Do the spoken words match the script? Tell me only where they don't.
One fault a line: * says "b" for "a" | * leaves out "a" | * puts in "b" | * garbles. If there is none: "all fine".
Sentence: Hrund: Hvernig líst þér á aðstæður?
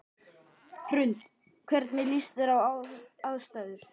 all fine